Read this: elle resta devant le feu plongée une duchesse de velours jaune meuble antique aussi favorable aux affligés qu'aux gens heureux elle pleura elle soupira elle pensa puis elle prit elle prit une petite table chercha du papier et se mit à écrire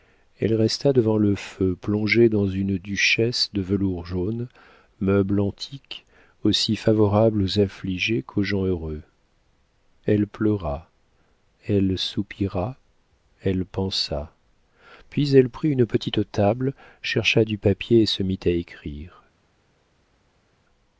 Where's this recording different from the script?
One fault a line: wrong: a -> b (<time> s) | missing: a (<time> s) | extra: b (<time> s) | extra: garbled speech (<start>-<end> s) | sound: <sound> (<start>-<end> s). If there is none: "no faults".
extra: dans (2.3 s)
missing: elle prit (15.7 s)